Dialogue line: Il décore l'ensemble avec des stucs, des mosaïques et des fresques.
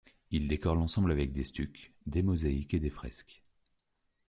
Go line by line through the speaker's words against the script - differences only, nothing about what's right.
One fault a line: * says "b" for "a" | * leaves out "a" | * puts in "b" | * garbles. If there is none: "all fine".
all fine